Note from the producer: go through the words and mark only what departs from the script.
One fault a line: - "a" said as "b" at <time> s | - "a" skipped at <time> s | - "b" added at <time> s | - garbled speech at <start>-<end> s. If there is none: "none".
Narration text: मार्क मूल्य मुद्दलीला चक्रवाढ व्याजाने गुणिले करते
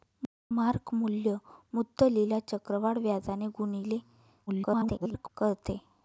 - garbled speech at 4.5-5.3 s